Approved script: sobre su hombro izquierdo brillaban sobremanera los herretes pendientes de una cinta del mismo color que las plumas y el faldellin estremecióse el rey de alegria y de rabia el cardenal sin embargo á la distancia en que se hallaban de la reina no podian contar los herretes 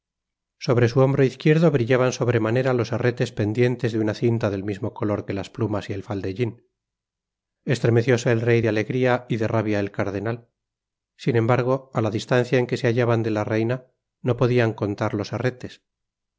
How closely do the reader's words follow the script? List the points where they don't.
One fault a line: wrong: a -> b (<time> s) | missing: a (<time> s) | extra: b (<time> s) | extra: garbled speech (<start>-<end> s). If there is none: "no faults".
no faults